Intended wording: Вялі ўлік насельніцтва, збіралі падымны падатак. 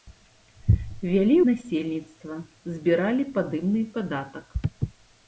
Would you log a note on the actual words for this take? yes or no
yes